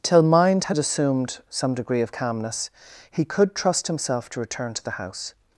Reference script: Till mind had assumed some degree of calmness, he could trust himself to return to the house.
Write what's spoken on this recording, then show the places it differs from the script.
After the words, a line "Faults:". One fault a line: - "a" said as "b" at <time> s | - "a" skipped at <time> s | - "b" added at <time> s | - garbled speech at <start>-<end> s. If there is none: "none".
Till mind had assumed some degree of calmness, he could trust himself to return to the house.
Faults:
none